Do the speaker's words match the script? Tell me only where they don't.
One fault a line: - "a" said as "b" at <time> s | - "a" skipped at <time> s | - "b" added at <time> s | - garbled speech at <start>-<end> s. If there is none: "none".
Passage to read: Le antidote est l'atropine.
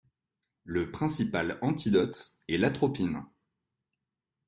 - "principal" added at 0.9 s